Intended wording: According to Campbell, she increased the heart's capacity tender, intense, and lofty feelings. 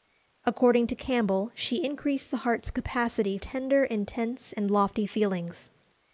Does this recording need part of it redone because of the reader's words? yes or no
no